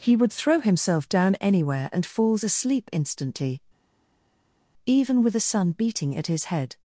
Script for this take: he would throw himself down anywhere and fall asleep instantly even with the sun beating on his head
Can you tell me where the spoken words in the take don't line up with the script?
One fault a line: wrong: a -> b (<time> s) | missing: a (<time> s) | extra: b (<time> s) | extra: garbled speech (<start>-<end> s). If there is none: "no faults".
wrong: fall -> falls (2.0 s)
wrong: on -> at (6.2 s)